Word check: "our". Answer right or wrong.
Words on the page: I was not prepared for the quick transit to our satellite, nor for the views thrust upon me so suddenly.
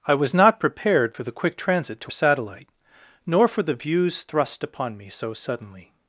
wrong